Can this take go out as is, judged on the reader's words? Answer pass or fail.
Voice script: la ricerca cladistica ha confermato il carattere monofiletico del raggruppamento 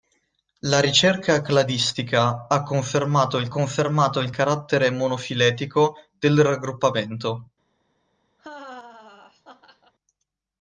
fail